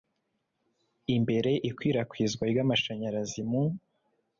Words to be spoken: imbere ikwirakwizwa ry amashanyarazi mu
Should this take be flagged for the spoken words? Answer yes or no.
no